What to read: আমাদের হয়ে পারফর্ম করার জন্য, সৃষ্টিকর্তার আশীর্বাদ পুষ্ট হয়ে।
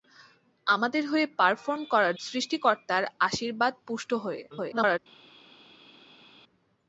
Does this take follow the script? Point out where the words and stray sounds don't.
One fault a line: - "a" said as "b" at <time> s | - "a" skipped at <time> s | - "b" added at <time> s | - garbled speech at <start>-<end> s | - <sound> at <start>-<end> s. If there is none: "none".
- "জন্য" skipped at 2.1 s
- garbled speech at 4.5-5.0 s